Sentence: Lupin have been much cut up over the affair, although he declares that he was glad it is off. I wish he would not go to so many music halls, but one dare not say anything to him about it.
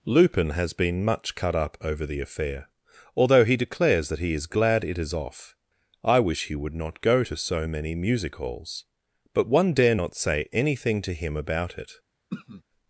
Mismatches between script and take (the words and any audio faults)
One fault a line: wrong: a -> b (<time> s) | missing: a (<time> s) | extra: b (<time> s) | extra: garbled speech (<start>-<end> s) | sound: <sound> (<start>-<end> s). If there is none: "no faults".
wrong: have -> has (0.5 s)
wrong: was -> is (4.3 s)
sound: throat clearing (12.3-12.6 s)